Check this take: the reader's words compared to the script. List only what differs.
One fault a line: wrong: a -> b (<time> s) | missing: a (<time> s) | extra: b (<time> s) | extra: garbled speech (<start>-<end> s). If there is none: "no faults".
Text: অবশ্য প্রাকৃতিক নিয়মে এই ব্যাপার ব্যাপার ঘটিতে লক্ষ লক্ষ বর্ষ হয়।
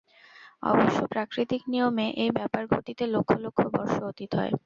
missing: ব্যাপার (2.6 s)
extra: অতীত (4.1 s)